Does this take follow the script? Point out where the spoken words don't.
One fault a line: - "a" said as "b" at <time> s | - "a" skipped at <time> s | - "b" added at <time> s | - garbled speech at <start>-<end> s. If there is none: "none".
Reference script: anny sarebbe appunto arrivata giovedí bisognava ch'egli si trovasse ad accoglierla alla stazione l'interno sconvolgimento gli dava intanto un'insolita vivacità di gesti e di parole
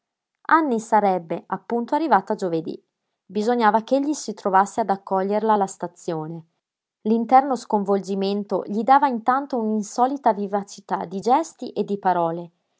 none